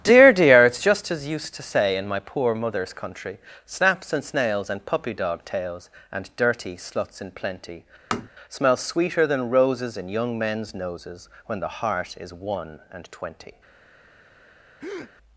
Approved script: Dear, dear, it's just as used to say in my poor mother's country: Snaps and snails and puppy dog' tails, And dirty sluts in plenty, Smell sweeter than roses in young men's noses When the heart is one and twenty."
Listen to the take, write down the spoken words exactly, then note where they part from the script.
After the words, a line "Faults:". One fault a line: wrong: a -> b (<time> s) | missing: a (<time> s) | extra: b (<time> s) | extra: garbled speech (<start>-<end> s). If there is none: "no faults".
Dear, dear, it's just as used to say in my poor mother's country: Snaps and snails and puppy dog' tails, And dirty sluts in plenty, Smell sweeter than roses in young men's noses When the heart is one and twenty."
Faults:
no faults